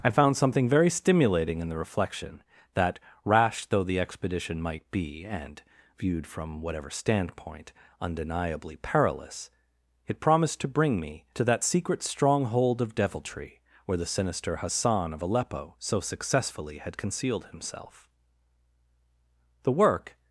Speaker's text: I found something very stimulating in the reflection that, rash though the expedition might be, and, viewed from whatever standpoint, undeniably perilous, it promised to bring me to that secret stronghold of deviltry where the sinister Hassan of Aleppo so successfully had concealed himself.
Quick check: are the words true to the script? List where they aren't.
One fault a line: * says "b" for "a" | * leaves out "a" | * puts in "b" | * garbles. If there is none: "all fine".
* puts in "The work"